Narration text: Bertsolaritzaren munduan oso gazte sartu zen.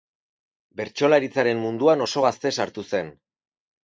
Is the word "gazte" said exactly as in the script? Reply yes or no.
yes